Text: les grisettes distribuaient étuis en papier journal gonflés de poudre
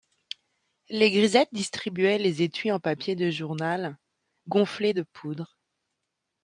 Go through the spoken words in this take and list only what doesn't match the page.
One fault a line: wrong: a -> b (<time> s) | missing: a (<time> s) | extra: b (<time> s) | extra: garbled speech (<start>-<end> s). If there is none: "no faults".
extra: les (2.2 s)
extra: de (3.2 s)